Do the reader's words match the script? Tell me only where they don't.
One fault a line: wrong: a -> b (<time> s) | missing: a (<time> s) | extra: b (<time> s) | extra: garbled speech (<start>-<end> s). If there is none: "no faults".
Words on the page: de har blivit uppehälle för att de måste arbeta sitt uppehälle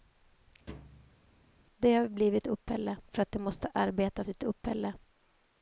no faults